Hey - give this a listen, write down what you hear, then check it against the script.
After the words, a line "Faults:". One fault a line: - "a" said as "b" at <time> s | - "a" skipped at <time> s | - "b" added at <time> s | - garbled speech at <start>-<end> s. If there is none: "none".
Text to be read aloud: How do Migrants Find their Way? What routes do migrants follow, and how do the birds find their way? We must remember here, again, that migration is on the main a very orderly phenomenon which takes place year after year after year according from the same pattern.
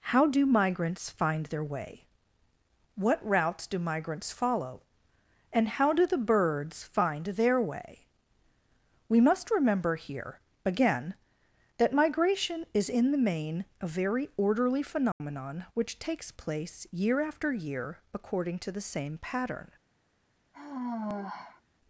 How do Migrants Find their Way? What routes do migrants follow, and how do the birds find their way? We must remember here, again, that migration is in the main a very orderly phenomenon which takes place year after year according to the same pattern.
Faults:
- "on" said as "in" at 12.9 s
- "after year" skipped at 18.0 s
- "from" said as "to" at 18.6 s